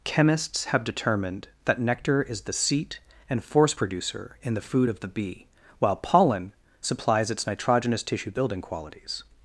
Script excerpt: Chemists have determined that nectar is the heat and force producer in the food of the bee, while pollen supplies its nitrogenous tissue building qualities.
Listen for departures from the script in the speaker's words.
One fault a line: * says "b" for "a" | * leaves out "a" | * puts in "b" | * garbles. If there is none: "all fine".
* says "seat" for "heat"